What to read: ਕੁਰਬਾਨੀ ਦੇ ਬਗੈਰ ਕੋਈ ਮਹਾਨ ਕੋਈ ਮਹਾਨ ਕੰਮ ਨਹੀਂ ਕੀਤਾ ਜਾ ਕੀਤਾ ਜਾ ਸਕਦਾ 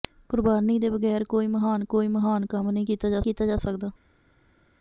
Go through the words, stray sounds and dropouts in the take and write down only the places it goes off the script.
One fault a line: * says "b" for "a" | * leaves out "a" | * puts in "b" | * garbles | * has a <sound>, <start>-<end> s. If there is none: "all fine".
all fine